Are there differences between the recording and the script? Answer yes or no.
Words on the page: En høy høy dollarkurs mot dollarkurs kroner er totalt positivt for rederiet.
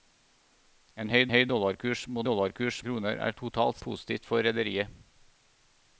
no